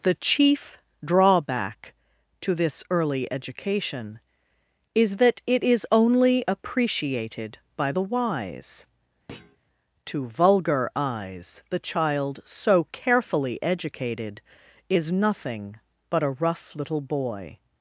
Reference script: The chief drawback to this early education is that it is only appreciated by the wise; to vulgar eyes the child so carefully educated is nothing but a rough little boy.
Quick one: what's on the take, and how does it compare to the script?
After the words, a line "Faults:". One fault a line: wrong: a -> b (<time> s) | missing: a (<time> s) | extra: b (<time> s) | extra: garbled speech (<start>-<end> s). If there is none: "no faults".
The chief drawback to this early education is that it is only appreciated by the wise; to vulgar eyes the child so carefully educated is nothing but a rough little boy.
Faults:
no faults